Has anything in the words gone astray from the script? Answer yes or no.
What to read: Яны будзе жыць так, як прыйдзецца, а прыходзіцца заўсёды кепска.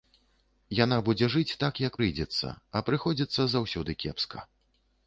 yes